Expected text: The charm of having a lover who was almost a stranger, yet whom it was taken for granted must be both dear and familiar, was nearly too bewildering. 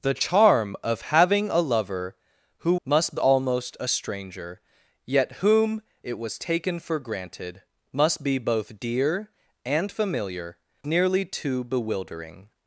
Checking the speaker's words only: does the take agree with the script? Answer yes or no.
no